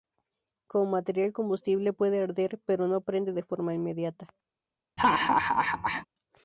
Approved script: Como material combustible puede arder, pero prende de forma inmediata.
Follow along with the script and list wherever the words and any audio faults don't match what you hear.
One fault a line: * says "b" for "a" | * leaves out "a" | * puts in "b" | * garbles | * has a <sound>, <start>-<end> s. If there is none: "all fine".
* puts in "no"
* has a laugh, 5.0-6.1 s